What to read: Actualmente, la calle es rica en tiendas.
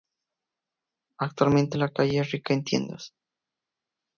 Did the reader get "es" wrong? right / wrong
right